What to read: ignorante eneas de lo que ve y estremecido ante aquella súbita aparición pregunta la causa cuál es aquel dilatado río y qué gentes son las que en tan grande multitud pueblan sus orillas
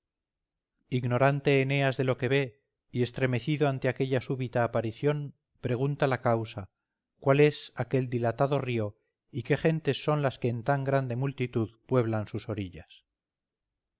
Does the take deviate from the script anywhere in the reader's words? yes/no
no